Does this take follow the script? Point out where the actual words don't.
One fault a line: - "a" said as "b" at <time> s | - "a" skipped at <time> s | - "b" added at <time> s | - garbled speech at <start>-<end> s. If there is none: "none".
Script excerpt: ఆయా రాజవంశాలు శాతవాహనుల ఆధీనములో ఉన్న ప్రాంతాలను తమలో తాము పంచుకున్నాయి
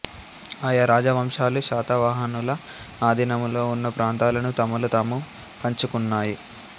none